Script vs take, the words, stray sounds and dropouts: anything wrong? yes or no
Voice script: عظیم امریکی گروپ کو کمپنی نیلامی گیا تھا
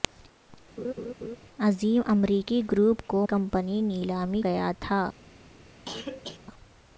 yes